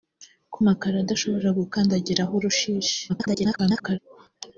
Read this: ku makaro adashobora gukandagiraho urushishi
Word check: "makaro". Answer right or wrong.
right